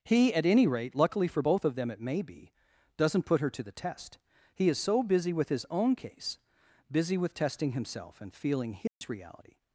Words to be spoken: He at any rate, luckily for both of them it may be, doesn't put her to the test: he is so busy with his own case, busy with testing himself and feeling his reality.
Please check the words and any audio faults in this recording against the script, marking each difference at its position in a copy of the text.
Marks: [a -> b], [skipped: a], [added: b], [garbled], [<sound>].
He at any rate, luckily for both of them it may be, doesn't put her to the test: he is so busy with his own case, busy with testing himself and feeling his [dropout] reality.